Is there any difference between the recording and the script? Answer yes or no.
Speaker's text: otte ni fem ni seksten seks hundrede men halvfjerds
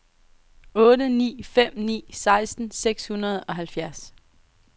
yes